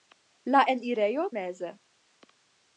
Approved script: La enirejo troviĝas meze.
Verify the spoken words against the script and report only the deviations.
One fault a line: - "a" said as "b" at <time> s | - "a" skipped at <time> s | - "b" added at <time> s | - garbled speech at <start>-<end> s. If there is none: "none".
- "troviĝas" skipped at 1.3 s